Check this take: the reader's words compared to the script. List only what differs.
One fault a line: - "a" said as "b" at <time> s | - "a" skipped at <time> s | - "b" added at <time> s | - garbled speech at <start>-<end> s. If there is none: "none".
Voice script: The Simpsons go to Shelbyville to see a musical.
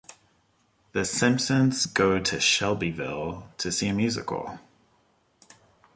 none